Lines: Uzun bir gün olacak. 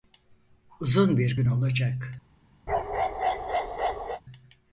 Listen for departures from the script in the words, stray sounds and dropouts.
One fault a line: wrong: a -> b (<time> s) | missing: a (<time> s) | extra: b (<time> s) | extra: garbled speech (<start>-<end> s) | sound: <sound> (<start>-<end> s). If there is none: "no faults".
sound: bark (2.7-4.2 s)